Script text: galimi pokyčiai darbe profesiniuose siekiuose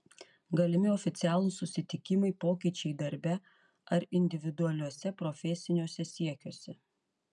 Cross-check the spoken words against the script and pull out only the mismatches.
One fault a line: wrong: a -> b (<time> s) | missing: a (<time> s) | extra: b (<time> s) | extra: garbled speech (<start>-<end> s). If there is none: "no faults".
extra: oficialūs susitikimai (0.9 s)
extra: ar individualiuose (4.0 s)